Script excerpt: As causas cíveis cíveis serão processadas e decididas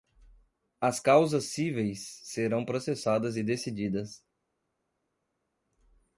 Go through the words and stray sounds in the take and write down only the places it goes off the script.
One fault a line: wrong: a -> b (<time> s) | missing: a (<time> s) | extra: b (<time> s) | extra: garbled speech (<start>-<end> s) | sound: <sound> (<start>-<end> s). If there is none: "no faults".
missing: cíveis (2.2 s)